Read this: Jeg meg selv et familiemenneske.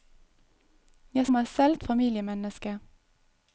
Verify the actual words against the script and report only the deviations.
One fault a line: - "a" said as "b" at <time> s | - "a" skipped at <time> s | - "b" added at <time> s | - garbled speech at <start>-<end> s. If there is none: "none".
none